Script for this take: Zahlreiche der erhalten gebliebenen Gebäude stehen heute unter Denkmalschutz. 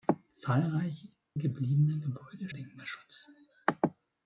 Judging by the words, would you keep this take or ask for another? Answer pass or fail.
fail